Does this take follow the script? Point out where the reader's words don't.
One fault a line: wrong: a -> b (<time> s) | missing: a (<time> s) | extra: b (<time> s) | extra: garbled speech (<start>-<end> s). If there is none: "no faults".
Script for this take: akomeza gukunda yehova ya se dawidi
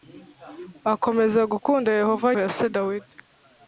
no faults